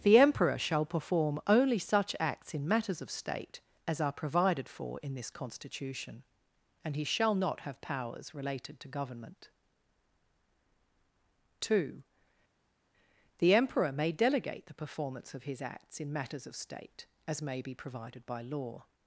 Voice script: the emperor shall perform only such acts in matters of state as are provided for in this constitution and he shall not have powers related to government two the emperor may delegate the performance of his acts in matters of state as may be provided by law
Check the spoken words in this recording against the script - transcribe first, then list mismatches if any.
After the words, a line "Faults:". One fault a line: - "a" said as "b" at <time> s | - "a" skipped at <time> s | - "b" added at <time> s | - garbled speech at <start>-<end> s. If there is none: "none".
the emperor shall perform only such acts in matters of state as are provided for in this constitution and he shall not have powers related to government two the emperor may delegate the performance of his acts in matters of state as may be provided by law
Faults:
none